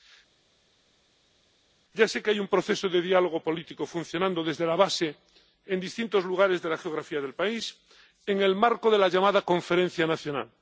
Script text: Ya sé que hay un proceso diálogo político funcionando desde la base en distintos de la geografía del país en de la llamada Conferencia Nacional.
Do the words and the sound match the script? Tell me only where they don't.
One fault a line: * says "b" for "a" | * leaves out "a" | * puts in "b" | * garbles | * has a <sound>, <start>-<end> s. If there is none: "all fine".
* puts in "de"
* puts in "lugares"
* puts in "el marco"